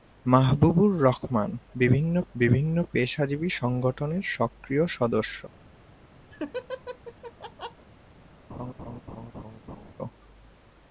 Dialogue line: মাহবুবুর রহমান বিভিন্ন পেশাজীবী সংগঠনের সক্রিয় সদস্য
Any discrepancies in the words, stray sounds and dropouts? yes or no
yes